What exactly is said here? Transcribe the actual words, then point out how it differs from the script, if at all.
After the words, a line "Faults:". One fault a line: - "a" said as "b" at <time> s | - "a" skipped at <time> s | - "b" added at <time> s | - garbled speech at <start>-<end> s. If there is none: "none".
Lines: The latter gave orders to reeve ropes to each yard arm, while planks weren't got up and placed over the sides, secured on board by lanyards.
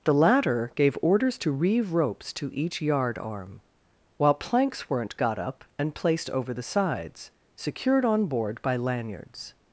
The latter gave orders to reeve ropes to each yard arm, while planks weren't got up and placed over the sides, secured on board by lanyards.
Faults:
none